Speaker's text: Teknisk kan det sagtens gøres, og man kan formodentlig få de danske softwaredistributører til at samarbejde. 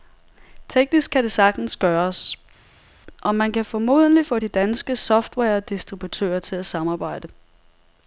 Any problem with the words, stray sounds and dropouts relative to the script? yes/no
no